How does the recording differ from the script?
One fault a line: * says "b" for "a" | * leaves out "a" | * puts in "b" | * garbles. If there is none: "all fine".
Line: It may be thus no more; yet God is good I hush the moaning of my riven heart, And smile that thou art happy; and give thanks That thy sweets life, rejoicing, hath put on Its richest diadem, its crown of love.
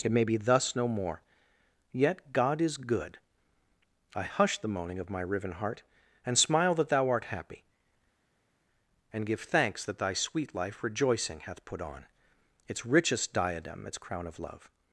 * says "sweet" for "sweets"